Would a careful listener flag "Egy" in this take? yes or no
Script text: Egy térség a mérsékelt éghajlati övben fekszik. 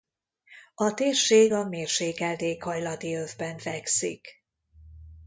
yes